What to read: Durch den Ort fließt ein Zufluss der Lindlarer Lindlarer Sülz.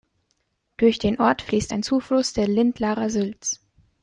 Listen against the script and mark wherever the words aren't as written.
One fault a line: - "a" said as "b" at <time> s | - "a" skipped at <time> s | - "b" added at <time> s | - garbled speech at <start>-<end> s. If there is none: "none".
- "Lindlarer" skipped at 3.1 s